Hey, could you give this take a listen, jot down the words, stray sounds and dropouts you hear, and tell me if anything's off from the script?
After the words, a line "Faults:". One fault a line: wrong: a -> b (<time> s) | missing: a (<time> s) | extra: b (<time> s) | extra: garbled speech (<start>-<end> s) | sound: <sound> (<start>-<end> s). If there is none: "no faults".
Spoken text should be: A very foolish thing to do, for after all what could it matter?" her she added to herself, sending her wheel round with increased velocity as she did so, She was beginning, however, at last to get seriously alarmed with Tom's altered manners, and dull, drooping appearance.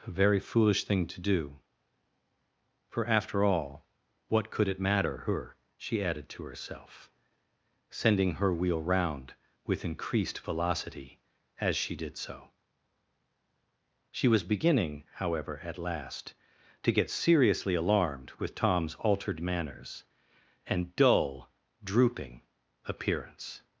A very foolish thing to do, for after all what could it matter?" her she added to herself, sending her wheel round with increased velocity as she did so, She was beginning, however, at last to get seriously alarmed with Tom's altered manners, and dull, drooping appearance.
Faults:
no faults